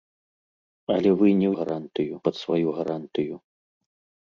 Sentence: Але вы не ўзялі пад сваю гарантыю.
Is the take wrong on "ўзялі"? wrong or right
wrong